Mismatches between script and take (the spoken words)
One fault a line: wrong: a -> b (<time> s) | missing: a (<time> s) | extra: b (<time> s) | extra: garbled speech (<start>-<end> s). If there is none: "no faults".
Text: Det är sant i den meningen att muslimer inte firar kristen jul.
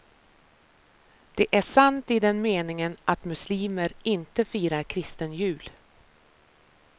no faults